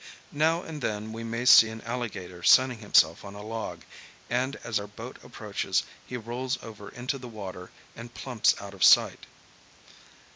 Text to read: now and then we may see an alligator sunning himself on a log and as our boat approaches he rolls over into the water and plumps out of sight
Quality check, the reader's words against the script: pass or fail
pass